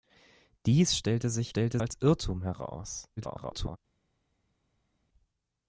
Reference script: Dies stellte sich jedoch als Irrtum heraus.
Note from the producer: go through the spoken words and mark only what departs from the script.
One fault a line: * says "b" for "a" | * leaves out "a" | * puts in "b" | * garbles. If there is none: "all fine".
* says "stellte" for "jedoch"
* garbles